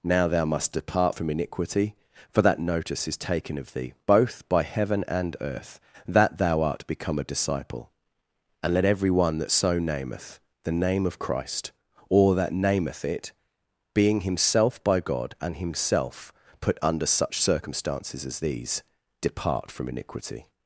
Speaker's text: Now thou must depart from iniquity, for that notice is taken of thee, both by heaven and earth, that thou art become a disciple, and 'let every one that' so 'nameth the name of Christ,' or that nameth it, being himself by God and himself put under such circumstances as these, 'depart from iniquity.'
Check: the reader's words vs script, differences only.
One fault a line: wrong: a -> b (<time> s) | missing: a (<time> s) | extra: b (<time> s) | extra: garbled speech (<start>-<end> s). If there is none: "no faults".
no faults